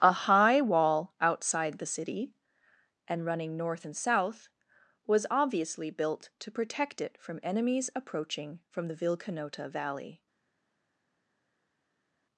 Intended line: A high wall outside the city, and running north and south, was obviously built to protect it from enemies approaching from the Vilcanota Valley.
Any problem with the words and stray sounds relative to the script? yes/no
no